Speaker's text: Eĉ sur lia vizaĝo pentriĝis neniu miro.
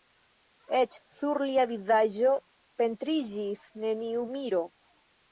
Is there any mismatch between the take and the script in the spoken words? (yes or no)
no